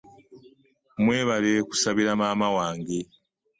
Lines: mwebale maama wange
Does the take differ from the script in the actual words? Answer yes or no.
yes